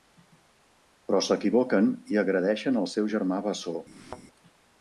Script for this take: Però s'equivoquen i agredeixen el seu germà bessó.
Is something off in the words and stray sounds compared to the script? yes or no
yes